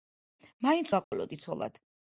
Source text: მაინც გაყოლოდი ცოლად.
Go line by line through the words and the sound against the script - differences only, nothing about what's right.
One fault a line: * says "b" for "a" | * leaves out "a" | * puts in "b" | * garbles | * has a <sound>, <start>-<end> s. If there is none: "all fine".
* has a dropout, 1.0-1.1 s